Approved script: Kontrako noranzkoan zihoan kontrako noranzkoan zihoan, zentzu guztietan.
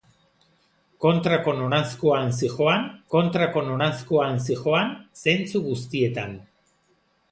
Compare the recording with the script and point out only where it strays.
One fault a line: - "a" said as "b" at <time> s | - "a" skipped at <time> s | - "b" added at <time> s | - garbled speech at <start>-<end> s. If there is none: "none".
none